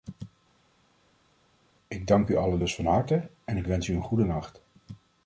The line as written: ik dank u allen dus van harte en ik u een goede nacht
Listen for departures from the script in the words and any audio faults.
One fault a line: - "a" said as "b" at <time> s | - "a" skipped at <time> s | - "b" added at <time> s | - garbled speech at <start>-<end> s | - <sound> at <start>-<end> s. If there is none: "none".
- "wens" added at 3.7 s